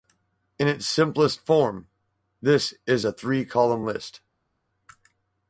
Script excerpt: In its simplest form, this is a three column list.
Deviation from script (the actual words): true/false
false